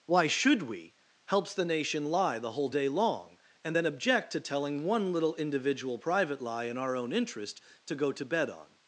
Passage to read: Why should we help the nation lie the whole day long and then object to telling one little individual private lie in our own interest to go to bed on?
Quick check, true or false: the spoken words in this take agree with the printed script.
false